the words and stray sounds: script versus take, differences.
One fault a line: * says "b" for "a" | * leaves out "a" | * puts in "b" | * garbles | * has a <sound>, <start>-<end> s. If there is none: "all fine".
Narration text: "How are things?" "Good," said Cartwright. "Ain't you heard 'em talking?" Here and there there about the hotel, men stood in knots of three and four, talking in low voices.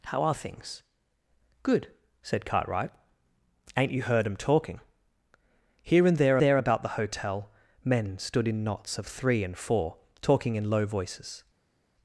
all fine